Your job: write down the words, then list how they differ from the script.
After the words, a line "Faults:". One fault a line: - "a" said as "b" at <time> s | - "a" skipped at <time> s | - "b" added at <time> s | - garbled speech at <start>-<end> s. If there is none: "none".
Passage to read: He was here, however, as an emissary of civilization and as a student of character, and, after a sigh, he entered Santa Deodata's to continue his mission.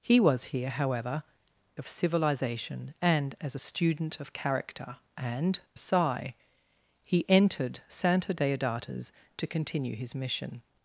He was here, however, of civilization and as a student of character, and, a sigh, he entered Santa Deodata's to continue his mission.
Faults:
- "as an emissary" skipped at 1.2 s
- "after" skipped at 5.6 s